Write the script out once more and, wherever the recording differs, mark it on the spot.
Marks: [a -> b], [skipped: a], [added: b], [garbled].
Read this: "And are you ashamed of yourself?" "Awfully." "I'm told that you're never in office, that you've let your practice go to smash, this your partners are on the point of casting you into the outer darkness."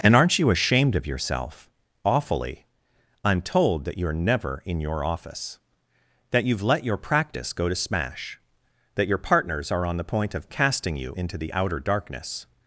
"And [are -> aren't] you ashamed of yourself?" "Awfully." "I'm told that you're never in [added: your] office, that you've let your practice go to smash, [this -> that] your partners are on the point of casting you into the outer darkness."